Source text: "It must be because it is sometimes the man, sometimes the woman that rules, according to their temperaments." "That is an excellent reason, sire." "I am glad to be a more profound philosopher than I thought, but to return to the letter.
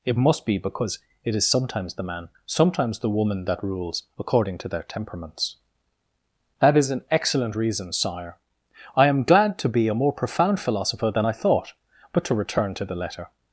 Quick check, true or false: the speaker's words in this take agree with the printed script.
true